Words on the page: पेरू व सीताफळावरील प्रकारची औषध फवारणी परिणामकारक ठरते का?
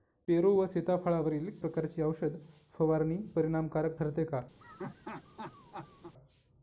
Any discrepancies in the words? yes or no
no